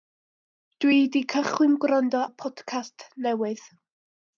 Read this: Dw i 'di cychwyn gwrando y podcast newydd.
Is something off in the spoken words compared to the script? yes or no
no